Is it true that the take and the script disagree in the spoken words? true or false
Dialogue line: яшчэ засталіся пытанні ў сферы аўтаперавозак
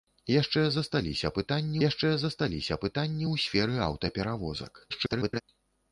true